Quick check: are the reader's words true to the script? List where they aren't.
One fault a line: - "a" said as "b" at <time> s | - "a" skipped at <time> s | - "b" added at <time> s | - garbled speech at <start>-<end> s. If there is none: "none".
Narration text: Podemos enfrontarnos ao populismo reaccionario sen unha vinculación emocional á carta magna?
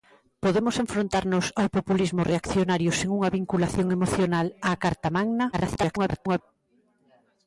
- garbled speech at 5.5-6.4 s